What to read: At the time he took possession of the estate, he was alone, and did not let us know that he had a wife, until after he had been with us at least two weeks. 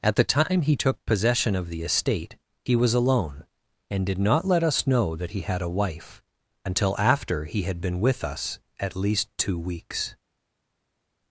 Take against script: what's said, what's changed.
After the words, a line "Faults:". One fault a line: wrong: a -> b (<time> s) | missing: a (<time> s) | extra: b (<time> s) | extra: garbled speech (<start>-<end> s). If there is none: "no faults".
At the time he took possession of the estate, he was alone, and did not let us know that he had a wife, until after he had been with us at least two weeks.
Faults:
no faults